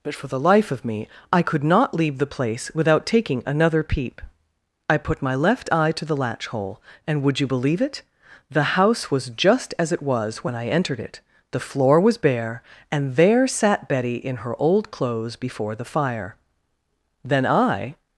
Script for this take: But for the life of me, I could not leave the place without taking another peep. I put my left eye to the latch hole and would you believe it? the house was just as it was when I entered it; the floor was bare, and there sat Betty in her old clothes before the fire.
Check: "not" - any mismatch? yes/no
no